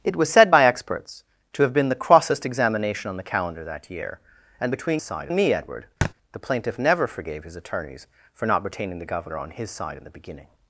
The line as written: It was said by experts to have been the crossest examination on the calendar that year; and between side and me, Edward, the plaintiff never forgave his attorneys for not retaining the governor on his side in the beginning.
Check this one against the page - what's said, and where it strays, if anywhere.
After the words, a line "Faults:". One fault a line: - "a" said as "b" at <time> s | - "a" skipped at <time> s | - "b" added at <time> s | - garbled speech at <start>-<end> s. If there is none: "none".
It was said by experts to have been the crossest examination on the calendar that year; and between side and me, Edward, the plaintiff never forgave his attorneys for not retaining the governor on his side in the beginning.
Faults:
none